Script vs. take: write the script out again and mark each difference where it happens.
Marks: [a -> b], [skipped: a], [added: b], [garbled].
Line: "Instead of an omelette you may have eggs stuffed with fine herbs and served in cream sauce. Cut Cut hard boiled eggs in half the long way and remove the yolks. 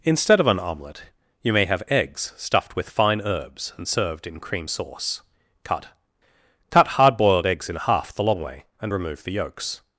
"Instead of an omelette you may have eggs stuffed with fine herbs and served in cream sauce. Cut Cut hard boiled eggs in half the long way and remove the yolks.